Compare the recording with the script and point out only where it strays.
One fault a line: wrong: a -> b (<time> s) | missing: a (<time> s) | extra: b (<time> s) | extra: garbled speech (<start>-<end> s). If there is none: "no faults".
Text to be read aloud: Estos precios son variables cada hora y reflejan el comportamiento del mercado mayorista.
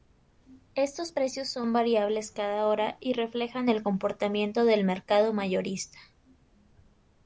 no faults